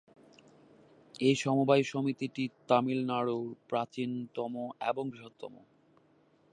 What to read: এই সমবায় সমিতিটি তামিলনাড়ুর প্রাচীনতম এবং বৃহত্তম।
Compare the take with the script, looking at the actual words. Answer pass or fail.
pass